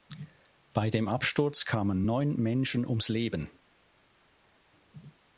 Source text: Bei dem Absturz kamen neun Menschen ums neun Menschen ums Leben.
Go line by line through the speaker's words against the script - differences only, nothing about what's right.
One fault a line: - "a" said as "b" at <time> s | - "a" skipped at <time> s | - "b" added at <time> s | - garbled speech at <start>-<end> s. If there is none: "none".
- "neun Menschen ums" skipped at 3.1 s